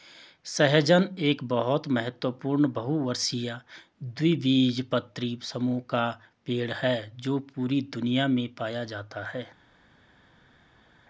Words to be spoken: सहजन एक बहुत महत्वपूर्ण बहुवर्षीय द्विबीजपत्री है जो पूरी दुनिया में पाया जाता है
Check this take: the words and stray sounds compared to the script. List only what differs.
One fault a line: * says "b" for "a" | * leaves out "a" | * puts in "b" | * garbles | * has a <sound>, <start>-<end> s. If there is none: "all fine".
* puts in "समूह का पेड़"